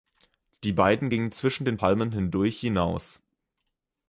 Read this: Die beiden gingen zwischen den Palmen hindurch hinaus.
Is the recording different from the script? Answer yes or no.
no